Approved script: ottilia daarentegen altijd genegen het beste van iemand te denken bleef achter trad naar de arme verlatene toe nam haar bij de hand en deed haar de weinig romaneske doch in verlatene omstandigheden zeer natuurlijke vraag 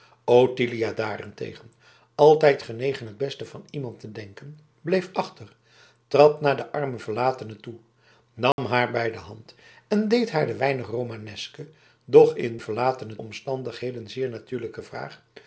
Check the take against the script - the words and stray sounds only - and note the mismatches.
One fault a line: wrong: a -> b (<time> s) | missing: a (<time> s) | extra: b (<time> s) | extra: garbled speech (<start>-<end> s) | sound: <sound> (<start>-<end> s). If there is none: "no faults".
sound: dropout (8.5-8.6 s)